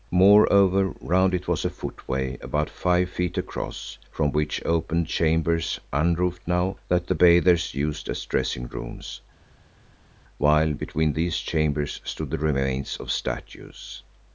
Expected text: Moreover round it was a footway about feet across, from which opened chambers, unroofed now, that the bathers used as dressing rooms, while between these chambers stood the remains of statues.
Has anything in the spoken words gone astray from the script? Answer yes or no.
yes